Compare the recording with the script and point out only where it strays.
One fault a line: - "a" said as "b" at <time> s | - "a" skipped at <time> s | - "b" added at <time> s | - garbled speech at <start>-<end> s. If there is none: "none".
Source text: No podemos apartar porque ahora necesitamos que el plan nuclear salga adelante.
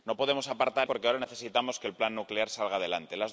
none